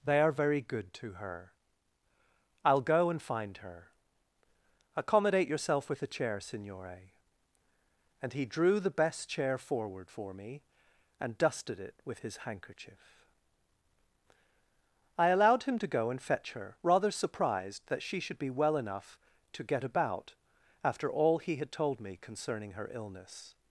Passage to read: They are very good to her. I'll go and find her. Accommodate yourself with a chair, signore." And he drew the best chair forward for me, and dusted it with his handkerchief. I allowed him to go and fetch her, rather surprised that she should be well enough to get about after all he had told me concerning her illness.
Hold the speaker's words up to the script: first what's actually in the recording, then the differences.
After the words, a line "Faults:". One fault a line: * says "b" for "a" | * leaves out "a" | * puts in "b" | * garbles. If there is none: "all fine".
They are very good to her. I'll go and find her. Accommodate yourself with a chair, signore." And he drew the best chair forward for me, and dusted it with his handkerchief. I allowed him to go and fetch her, rather surprised that she should be well enough to get about after all he had told me concerning her illness.
Faults:
all fine